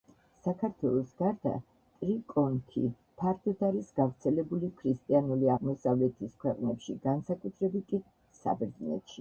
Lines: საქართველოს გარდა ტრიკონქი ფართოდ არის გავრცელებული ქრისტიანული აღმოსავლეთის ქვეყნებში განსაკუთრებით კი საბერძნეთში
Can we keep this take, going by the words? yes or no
yes